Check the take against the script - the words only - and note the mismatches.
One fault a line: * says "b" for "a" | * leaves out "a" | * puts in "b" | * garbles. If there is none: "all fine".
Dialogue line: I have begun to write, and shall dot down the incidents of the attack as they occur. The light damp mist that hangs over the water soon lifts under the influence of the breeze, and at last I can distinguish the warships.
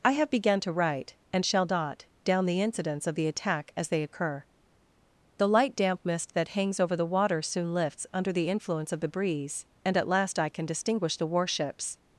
all fine